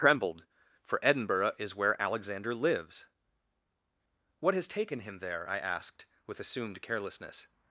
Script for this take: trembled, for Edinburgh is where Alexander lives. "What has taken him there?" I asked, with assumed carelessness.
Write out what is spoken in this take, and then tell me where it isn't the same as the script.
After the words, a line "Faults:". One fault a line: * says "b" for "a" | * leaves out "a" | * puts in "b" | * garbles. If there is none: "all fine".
trembled, for Edinburgh is where Alexander lives. "What has taken him there?" I asked, with assumed carelessness.
Faults:
all fine